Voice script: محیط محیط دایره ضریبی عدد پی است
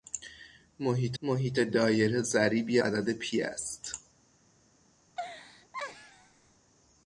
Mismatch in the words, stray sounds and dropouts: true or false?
true